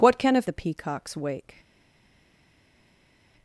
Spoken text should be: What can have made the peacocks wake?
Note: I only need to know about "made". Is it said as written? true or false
false